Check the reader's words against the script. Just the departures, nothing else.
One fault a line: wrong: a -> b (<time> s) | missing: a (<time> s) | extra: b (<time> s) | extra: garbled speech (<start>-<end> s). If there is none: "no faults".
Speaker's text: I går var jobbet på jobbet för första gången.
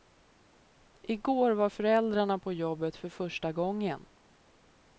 wrong: jobbet -> föräldrarna (1.7 s)